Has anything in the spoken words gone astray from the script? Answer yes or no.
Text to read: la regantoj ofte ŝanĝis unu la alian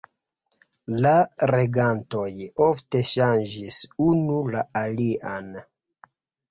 no